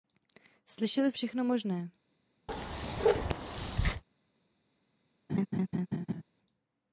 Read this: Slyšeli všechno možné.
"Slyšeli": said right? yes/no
yes